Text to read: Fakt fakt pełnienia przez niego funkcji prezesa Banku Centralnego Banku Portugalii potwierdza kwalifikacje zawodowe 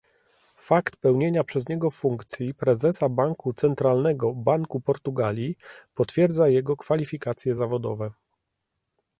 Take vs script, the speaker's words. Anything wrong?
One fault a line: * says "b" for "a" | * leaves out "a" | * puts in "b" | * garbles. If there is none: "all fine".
* leaves out "fakt"
* puts in "jego"